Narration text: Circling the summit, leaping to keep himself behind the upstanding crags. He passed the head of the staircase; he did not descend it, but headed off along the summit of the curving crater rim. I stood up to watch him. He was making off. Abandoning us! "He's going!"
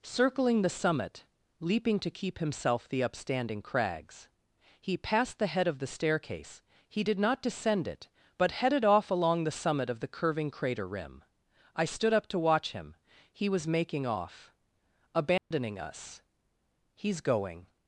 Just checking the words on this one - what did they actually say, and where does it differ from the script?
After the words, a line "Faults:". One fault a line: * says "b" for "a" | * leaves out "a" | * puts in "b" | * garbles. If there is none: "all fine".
Circling the summit, leaping to keep himself the upstanding crags. He passed the head of the staircase; he did not descend it, but headed off along the summit of the curving crater rim. I stood up to watch him. He was making off. Abandoning us! "He's going!"
Faults:
* leaves out "behind"